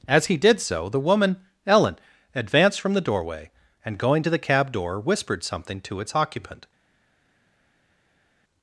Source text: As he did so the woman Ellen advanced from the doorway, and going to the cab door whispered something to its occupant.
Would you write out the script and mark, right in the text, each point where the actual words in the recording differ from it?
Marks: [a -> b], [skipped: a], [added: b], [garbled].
As he did so the woman Ellen advanced from the doorway, and going to the cab door whispered something to its occupant.